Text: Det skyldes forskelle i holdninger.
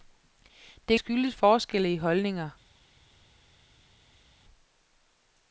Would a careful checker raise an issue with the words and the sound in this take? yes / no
no